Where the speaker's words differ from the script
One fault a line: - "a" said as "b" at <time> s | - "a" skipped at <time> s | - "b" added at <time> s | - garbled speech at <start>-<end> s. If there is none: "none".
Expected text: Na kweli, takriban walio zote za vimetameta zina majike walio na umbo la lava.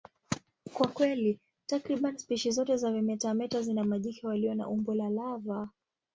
- "Na" said as "Kwa" at 0.7 s
- "walio" said as "spishi" at 2.2 s